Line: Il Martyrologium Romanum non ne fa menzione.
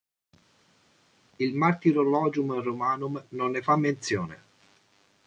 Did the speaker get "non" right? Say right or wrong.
right